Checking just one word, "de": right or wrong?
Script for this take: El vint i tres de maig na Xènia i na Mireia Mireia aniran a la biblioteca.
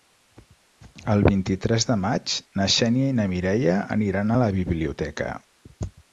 right